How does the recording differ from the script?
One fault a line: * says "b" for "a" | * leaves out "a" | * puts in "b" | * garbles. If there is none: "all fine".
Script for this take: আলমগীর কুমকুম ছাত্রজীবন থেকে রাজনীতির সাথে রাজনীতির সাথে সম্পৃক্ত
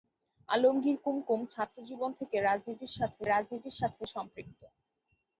all fine